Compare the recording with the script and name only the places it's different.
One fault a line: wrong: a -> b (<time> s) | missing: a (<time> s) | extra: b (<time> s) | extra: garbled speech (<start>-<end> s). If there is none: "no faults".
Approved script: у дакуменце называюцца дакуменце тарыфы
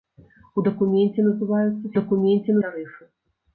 no faults